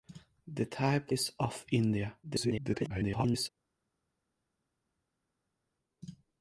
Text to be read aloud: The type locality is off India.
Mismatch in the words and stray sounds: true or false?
true